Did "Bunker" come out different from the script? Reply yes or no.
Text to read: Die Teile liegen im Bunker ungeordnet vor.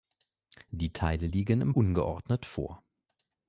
yes